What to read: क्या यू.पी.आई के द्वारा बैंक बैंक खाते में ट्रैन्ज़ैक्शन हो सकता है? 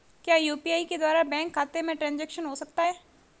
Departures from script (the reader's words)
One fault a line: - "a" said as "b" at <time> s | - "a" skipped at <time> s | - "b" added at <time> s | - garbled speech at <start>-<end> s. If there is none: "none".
- "बैंक" skipped at 1.5 s